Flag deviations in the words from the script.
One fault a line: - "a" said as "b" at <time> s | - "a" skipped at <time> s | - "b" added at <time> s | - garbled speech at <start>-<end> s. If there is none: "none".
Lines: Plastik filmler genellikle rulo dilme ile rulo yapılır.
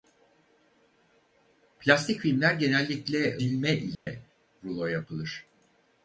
- "rulo" skipped at 3.4 s